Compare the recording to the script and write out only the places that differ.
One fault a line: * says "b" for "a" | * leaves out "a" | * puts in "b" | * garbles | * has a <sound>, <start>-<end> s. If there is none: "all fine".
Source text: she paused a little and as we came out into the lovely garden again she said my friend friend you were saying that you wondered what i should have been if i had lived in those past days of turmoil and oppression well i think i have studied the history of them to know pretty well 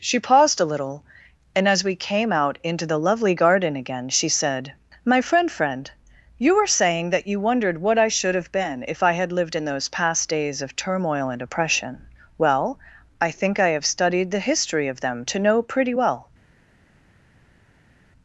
all fine